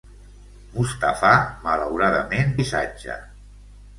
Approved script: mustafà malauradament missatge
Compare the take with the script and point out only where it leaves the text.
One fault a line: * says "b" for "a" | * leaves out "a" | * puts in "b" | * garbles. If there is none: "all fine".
all fine